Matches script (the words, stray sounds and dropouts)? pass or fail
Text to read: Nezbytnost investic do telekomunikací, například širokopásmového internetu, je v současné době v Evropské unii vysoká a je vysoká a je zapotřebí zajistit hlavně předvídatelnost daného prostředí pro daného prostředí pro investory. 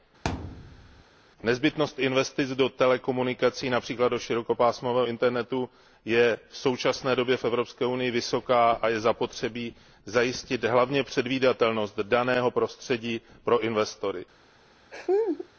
fail